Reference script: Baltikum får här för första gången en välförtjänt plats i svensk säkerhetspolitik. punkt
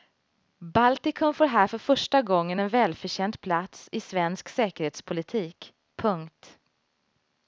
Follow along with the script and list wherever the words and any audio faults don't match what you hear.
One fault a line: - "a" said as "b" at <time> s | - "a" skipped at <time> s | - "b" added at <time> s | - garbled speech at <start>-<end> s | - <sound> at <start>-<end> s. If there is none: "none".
none